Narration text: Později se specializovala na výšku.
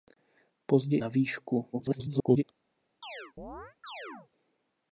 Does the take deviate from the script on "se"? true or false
true